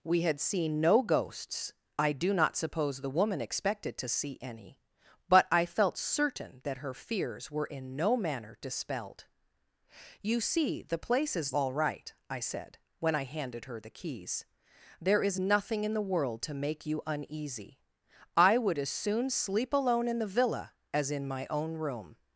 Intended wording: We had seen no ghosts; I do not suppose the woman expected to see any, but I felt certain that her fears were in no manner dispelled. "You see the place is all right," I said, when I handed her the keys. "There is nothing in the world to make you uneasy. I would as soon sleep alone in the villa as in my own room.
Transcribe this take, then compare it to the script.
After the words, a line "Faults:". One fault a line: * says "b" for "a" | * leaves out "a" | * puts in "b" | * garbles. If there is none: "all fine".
We had seen no ghosts; I do not suppose the woman expected to see any, but I felt certain that her fears were in no manner dispelled. "You see the place is all right," I said, when I handed her the keys. "There is nothing in the world to make you uneasy. I would as soon sleep alone in the villa as in my own room.
Faults:
all fine